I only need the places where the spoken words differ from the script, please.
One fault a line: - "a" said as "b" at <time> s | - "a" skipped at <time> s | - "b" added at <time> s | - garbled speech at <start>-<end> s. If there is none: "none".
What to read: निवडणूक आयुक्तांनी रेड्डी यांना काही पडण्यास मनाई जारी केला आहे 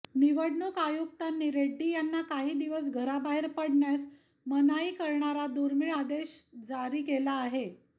- "दिवस घराबाहेर" added at 2.6 s
- "करणारा दुर्मिळ आदेश" added at 5.0 s